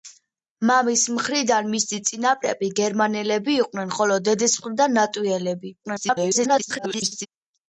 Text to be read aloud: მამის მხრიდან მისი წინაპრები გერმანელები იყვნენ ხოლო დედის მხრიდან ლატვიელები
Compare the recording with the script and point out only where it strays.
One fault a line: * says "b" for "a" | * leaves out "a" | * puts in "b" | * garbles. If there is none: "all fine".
* garbles